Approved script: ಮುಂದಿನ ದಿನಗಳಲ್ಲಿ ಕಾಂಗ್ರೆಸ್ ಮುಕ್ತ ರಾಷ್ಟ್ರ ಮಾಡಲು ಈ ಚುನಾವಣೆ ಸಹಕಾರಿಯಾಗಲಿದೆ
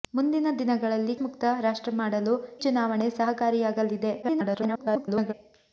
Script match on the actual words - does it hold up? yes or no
no